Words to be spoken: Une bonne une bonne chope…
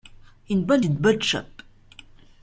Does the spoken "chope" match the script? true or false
true